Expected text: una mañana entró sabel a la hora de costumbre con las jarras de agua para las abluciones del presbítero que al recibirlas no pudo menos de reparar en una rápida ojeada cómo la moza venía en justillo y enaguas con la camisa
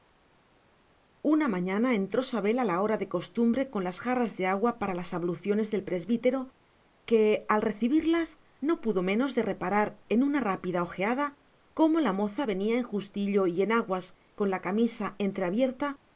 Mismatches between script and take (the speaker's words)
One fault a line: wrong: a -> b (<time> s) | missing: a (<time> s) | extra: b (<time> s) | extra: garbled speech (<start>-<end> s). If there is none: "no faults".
no faults